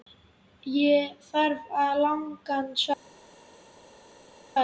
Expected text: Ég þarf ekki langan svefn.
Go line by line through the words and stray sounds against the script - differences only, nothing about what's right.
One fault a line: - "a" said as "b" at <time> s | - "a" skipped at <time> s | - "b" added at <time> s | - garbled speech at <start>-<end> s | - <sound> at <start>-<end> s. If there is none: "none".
none